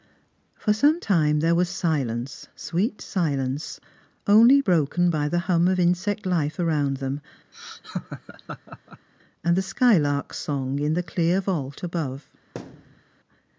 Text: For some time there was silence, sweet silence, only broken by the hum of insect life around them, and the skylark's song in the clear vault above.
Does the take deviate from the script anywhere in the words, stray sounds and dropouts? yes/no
yes